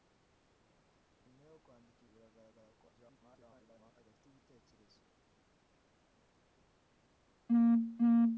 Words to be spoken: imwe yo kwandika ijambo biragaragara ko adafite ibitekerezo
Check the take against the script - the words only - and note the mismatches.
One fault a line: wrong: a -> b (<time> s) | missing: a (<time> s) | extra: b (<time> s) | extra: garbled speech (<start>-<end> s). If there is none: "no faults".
missing: ijambo (2.0 s)
extra: garbled speech (2.9-3.9 s)